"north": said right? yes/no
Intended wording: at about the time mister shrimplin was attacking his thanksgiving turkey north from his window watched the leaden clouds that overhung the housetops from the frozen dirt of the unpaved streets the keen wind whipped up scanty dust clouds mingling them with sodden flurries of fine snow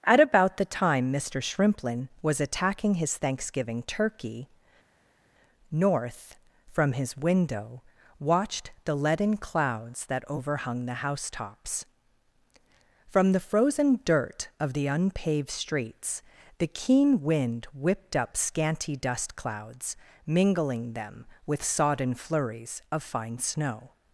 yes